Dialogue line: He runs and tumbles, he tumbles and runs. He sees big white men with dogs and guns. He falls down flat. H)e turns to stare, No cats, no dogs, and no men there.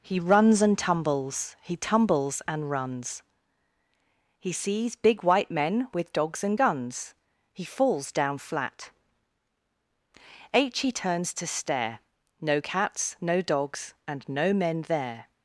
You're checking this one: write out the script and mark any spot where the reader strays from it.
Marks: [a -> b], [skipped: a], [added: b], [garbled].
He runs and tumbles, he tumbles and runs. He sees big white men with dogs and guns. He falls down flat. [added: h] H)e turns to stare, No cats, no dogs, and no men there.